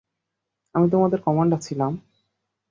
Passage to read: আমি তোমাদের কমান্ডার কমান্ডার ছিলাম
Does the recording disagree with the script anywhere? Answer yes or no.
yes